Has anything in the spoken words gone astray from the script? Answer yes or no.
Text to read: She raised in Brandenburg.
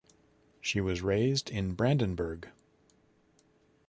yes